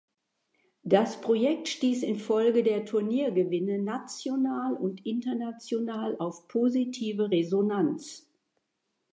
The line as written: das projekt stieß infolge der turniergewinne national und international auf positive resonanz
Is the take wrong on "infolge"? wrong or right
right